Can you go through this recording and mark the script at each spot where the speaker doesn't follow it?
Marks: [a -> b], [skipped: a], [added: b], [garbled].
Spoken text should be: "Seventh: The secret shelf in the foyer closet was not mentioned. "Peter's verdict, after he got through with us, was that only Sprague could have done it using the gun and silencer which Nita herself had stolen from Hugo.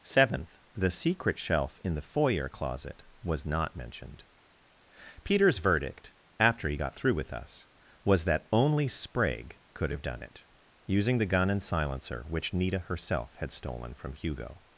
"Seventh: The secret shelf in the foyer closet was not mentioned. "Peter's verdict, after he got through with us, was that only Sprague could have done it using the gun and silencer which Nita herself had stolen from Hugo.